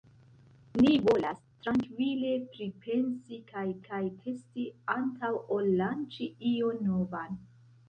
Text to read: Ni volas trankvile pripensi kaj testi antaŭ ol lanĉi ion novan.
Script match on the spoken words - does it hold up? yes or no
no